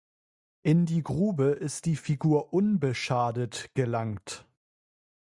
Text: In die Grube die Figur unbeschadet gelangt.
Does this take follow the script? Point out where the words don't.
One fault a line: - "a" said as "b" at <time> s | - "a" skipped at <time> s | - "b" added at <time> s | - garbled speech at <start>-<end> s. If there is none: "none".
- "ist" added at 1.5 s